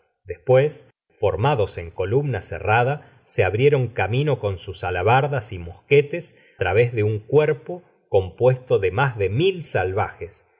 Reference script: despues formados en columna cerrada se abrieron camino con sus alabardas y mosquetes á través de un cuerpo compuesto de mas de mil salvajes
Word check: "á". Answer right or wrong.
wrong